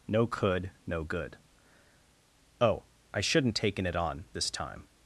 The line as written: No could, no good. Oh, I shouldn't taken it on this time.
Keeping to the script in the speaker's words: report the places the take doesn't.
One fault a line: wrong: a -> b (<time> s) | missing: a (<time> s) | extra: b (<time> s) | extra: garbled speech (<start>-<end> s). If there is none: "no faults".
no faults